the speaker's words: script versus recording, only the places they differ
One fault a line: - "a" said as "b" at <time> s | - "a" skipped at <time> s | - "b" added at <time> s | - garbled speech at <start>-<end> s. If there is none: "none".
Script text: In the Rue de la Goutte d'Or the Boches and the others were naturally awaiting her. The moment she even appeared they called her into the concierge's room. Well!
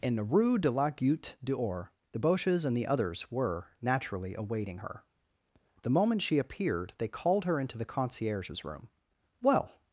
- "even" skipped at 6.4 s